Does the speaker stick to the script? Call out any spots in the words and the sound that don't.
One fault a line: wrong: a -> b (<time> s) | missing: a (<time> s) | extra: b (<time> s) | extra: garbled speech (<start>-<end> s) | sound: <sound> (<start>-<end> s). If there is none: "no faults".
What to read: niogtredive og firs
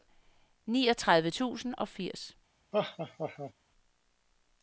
extra: tusind (1.3 s)
sound: laugh (2.7-3.5 s)